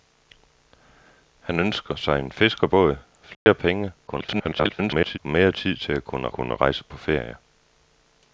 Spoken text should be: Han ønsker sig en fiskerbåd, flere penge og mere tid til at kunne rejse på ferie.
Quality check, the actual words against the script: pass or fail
fail